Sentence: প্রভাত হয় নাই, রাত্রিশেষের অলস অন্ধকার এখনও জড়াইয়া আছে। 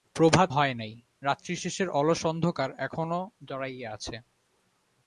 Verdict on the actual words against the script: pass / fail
pass